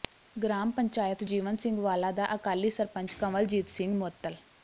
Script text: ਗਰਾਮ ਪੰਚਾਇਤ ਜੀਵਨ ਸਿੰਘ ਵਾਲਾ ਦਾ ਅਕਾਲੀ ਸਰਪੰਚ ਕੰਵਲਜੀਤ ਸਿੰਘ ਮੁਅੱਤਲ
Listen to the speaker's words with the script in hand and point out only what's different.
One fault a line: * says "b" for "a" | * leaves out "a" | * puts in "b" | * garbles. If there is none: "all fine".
all fine